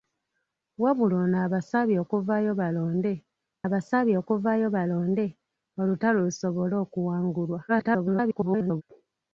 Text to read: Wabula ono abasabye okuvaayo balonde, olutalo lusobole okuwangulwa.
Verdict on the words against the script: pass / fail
fail